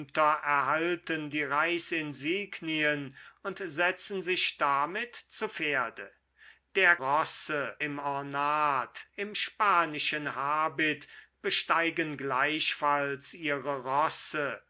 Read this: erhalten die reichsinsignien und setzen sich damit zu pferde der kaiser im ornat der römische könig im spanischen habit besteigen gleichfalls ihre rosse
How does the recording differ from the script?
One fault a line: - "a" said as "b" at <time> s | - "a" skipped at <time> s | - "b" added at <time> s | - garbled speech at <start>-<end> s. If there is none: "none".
- "kaiser" said as "rosse" at 7.0 s
- "der römische könig" skipped at 9.1 s